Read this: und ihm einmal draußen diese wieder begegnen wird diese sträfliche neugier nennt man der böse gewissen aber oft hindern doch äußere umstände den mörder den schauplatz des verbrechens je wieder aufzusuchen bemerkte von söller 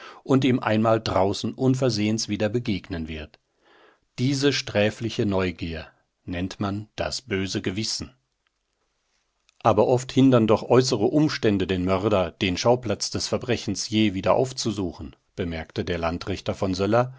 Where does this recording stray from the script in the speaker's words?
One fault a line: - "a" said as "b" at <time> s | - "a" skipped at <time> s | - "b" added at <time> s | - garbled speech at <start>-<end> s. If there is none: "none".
- "diese" said as "unversehens" at 1.5 s
- "der" said as "das" at 7.0 s
- "der landrichter" added at 15.8 s